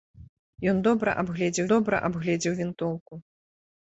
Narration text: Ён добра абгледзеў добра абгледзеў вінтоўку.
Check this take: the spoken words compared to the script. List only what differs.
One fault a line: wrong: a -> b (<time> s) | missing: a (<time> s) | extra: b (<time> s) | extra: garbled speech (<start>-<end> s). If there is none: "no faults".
no faults